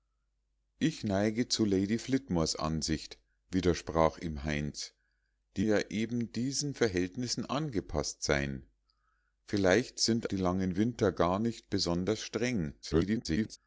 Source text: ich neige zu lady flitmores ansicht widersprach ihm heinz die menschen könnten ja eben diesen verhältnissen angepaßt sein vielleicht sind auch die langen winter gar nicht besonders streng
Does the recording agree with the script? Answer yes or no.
no